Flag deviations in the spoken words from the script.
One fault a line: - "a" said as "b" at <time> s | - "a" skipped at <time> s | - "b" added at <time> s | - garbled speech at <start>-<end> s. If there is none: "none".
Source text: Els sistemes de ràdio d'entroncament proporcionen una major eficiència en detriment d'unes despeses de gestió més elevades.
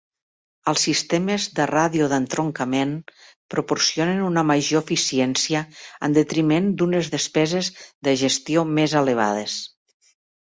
none